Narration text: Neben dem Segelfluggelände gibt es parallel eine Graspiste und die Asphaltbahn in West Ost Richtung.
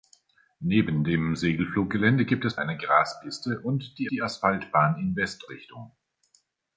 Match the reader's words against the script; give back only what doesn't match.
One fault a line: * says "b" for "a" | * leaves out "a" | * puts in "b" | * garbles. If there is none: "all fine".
* leaves out "parallel"
* puts in "die"
* leaves out "Ost"